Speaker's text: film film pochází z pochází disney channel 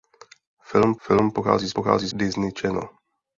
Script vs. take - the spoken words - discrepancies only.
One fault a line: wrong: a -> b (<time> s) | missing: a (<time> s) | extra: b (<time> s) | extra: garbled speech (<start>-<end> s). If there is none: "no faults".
no faults